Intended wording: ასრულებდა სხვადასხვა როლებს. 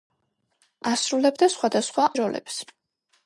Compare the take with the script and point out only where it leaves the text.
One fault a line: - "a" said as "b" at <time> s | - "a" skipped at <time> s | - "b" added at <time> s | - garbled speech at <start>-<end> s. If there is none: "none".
none